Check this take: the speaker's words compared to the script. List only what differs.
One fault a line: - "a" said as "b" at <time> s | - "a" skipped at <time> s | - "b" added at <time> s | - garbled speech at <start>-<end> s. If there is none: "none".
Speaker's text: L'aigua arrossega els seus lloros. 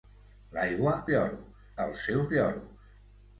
- "arrossega" said as "lloros" at 1.1 s